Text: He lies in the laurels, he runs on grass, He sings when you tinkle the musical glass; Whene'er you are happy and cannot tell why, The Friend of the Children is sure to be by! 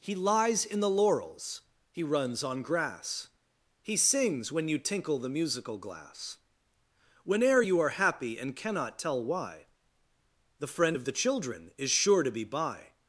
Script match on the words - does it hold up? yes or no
yes